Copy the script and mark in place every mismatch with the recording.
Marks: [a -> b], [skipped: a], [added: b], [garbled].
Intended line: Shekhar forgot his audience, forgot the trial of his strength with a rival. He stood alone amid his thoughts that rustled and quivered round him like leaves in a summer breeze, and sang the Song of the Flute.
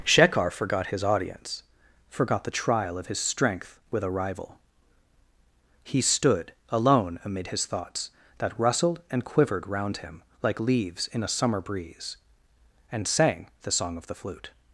Shekhar forgot his audience, forgot the trial of his strength with a rival. He stood alone amid his thoughts that rustled and quivered round him like leaves in a summer breeze, and sang the Song of the Flute.